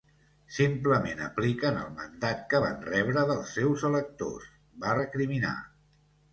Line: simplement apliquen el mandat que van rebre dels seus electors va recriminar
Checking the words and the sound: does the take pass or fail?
pass